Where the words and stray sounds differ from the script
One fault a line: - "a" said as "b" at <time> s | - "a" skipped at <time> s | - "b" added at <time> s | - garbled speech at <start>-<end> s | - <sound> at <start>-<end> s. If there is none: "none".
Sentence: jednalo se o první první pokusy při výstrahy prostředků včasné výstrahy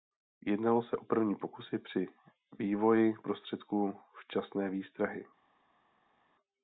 - "první" skipped at 1.4 s
- "výstrahy" said as "vývoji" at 2.6 s